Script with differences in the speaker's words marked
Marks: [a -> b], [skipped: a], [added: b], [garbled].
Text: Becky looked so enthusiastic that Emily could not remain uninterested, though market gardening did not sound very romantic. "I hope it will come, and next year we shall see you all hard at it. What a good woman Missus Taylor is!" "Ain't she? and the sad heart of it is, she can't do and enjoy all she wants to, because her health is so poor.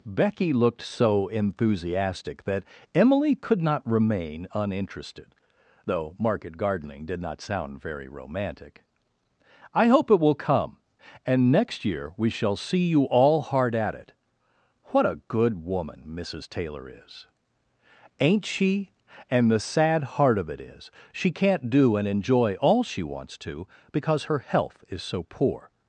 Becky looked so enthusiastic that Emily could not remain uninterested, though market gardening did not sound very romantic. "I hope it will come, and next year we shall see you all hard at it. What a good woman Missus Taylor is!" "Ain't she? and the sad heart of it is, she can't do and enjoy all she wants to, because her health is so poor.